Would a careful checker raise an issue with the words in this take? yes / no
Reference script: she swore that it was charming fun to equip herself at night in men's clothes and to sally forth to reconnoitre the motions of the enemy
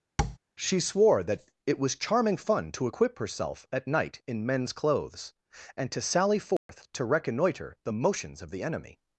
no